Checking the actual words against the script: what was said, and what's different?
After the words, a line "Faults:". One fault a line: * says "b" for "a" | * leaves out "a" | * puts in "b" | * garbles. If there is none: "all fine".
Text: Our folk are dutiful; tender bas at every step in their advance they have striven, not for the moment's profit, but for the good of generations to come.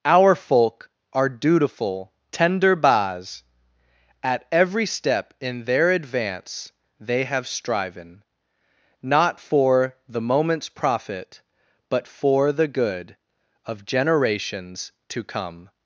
Our folk are dutiful; tender bas at every step in their advance they have striven, not for the moment's profit, but for the good of generations to come.
Faults:
all fine